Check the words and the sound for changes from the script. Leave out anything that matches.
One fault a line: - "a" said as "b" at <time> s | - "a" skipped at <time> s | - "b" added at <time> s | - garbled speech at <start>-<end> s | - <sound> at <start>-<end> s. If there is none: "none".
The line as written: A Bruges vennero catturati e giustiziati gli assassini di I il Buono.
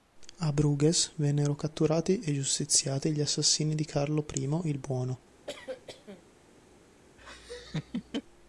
- "Carlo" added at 3.9 s
- cough at 5.5-6.2 s
- laugh at 7.2-8.2 s